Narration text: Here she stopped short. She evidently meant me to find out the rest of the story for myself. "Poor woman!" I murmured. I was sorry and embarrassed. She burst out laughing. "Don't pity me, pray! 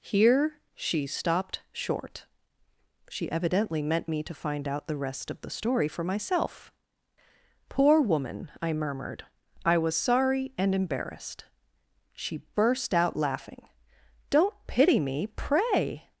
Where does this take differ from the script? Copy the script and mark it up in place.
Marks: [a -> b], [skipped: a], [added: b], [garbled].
Here she stopped short. She evidently meant me to find out the rest of the story for myself. "Poor woman!" I murmured. I was sorry and embarrassed. She burst out laughing. "Don't pity me, pray!